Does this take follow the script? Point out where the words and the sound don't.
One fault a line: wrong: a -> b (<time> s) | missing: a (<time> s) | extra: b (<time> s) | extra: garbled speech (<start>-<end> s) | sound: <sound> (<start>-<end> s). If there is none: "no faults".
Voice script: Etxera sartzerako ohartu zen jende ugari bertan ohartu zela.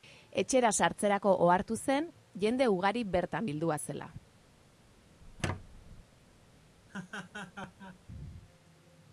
wrong: ohartu -> bildua (3.5 s)
sound: squeak (5.2-6.0 s)
sound: laugh (6.9-8.0 s)